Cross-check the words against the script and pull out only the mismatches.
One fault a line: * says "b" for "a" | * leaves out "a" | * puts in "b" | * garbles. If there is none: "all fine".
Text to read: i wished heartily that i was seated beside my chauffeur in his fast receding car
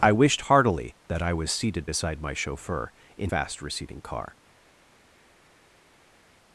* leaves out "his"